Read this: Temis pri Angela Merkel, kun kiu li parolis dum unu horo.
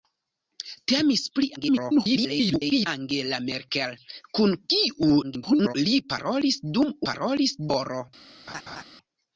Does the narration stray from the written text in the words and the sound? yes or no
yes